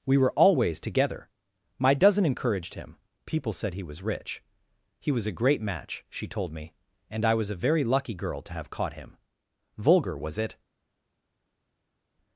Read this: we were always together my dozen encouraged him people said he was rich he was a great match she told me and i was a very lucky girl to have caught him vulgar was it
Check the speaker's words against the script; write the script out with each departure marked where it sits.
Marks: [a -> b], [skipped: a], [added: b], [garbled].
we were always together my dozen encouraged him people said he was rich he was a great match she told me and i was a very lucky girl to have caught him vulgar was it